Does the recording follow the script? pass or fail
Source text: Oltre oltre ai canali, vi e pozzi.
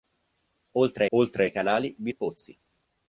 pass